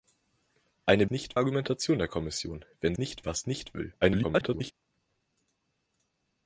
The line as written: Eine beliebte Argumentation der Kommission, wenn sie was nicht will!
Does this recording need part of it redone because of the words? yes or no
yes